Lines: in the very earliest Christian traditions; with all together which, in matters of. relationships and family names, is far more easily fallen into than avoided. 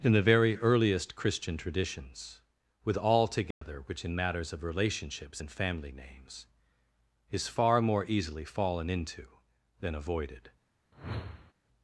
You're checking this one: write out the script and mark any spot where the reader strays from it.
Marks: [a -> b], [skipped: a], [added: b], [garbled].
in the very earliest Christian traditions; with all together which, in matters of. relationships and family names, is far more easily fallen into than avoided.